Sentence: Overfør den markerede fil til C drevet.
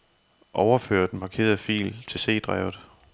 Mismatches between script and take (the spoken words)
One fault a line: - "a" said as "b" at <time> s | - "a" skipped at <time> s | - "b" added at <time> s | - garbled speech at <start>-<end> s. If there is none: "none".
none